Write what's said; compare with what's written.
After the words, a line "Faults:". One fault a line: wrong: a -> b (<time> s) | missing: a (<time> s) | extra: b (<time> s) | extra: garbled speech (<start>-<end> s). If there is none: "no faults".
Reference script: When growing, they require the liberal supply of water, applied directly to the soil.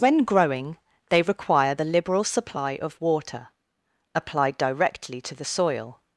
When growing, they require the liberal supply of water, applied directly to the soil.
Faults:
no faults